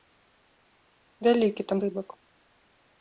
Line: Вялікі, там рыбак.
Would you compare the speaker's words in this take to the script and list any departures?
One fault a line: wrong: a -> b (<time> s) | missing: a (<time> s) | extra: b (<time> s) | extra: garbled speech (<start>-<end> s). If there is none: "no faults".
no faults